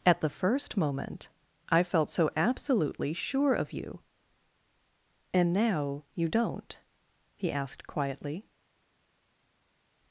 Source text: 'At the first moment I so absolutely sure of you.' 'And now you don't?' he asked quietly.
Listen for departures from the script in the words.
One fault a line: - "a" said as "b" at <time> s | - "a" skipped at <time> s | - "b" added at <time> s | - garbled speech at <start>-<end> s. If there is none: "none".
- "felt" added at 1.8 s